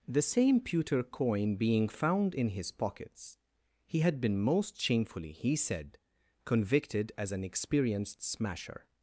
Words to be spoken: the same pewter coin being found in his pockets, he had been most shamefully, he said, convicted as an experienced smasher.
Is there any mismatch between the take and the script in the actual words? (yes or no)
no